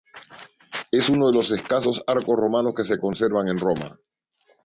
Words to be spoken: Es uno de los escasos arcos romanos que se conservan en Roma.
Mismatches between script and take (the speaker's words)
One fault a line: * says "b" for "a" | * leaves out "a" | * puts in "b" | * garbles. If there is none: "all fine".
all fine